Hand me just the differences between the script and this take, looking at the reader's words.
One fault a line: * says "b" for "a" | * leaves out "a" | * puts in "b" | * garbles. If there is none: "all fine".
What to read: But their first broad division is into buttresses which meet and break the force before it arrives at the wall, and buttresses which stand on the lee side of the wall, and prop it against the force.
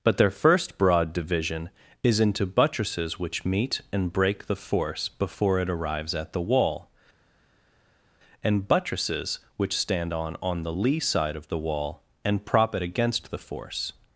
* puts in "on"